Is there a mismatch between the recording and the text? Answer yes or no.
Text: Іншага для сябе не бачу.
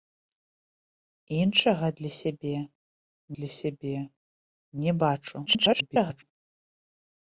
yes